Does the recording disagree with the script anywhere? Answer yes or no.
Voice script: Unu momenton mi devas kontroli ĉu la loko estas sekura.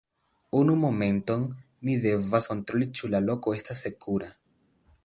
no